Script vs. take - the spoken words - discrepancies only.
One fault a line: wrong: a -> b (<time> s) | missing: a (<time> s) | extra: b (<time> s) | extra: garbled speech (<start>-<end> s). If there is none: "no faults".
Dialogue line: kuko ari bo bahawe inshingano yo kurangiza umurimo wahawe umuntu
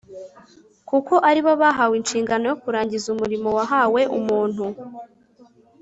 no faults